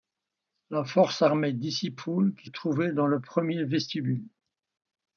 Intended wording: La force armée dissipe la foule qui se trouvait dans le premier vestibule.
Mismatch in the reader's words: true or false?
true